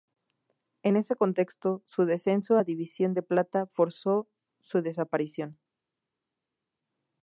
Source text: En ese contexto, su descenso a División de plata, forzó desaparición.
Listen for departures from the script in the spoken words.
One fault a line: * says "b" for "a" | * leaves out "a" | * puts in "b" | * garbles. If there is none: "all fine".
* puts in "su"